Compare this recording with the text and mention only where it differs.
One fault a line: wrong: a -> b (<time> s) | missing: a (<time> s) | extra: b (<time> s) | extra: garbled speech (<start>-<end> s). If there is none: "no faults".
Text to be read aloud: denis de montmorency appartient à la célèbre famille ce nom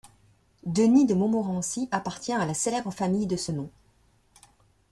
extra: de (3.3 s)